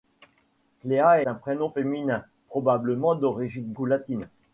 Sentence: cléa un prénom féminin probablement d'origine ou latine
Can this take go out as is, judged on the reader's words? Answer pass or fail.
pass